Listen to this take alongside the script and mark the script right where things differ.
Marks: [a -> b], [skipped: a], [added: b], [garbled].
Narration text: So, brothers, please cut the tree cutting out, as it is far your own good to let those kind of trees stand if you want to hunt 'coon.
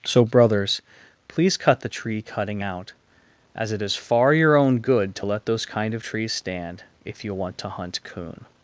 So, brothers, please cut the tree cutting out, as it is far your own good to let those kind of trees stand if you want to hunt 'coon.